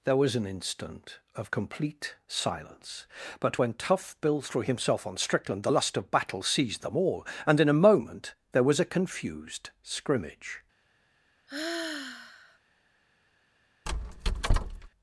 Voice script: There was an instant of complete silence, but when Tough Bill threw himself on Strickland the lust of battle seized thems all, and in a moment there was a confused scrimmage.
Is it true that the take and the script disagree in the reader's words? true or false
true